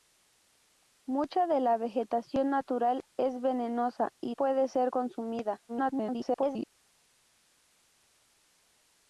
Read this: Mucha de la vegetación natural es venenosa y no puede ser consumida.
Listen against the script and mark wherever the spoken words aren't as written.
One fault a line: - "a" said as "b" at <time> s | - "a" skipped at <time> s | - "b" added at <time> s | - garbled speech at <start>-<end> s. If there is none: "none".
- "no" skipped at 4.3 s
- garbled speech at 5.7-6.7 s